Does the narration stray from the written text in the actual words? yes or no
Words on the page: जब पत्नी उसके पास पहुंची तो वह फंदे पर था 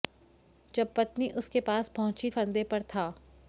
yes